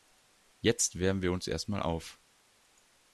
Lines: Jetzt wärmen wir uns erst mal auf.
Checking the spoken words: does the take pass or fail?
pass